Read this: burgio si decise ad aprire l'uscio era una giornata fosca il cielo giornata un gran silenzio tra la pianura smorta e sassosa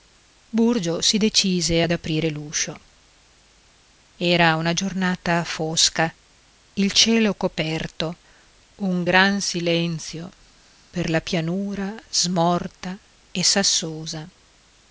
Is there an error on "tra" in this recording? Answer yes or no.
yes